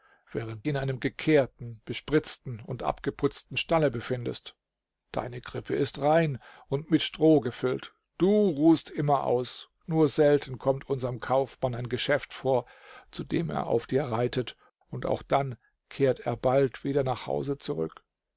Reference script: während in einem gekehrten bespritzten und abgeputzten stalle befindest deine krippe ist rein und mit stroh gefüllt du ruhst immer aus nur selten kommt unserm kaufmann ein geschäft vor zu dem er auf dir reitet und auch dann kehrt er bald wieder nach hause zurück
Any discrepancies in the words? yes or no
no